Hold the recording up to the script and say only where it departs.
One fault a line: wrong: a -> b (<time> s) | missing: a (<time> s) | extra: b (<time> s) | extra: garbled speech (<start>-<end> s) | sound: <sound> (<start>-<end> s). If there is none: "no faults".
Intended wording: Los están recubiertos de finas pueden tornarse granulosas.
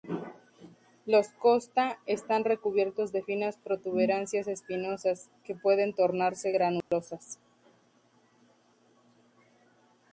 extra: costa (1.3 s)
extra: protuberancias espinosas que (3.6 s)
sound: dropout (6.8-6.9 s)